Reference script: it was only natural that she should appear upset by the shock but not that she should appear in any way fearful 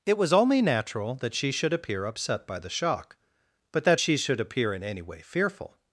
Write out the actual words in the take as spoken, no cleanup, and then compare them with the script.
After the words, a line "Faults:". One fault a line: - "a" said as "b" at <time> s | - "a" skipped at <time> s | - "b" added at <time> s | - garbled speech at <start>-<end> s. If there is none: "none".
it was only natural that she should appear upset by the shock but that she should appear in any way fearful
Faults:
- "not" skipped at 3.8 s